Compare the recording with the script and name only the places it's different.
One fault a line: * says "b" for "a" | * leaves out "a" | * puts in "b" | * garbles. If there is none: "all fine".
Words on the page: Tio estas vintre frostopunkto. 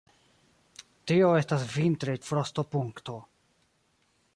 all fine